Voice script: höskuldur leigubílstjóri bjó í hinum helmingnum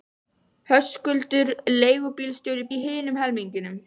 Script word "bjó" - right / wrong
wrong